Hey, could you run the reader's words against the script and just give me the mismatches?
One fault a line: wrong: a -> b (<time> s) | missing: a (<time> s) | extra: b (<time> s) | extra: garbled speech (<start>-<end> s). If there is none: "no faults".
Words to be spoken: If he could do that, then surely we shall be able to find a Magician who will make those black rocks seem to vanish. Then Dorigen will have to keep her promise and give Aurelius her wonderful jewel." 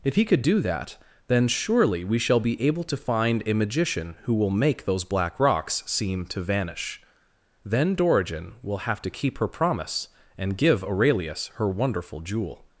no faults